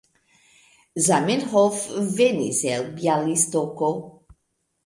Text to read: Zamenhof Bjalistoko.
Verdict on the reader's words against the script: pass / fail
fail